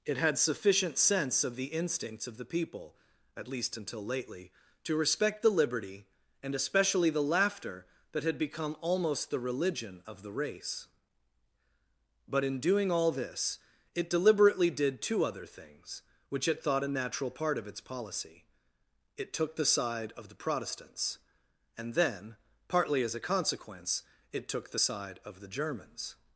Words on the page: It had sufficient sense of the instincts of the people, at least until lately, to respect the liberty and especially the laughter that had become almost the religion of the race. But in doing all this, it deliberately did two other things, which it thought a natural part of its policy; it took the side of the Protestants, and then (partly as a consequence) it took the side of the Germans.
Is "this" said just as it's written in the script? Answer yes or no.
yes